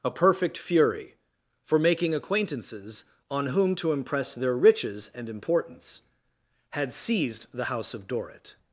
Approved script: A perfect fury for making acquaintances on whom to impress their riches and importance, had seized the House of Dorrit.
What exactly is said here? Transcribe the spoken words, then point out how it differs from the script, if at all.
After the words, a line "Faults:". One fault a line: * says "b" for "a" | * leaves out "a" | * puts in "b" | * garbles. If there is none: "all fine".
A perfect fury for making acquaintances on whom to impress their riches and importance, had seized the House of Dorrit.
Faults:
all fine